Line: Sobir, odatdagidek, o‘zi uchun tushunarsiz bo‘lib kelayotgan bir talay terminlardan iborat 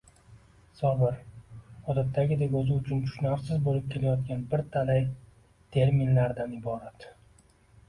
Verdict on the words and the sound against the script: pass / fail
pass